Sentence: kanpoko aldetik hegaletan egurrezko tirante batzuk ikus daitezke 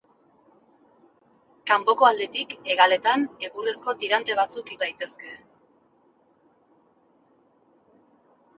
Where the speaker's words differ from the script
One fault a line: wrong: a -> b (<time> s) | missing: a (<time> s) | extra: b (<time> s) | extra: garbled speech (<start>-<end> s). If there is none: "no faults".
missing: ikus (4.7 s)